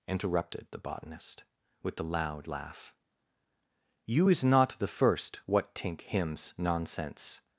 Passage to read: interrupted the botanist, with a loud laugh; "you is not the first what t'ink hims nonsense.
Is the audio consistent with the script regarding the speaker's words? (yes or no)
no